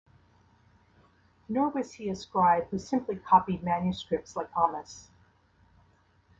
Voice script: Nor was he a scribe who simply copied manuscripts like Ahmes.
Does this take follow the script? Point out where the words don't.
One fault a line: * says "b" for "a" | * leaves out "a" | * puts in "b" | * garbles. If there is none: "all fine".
all fine